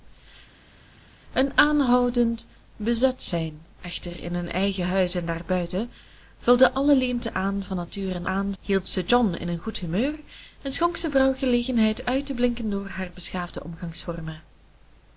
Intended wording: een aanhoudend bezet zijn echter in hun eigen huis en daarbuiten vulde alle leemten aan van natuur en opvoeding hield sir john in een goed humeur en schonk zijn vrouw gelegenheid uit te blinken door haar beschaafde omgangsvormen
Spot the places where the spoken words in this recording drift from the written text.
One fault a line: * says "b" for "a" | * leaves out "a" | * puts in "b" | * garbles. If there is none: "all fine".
* says "aan" for "opvoeding"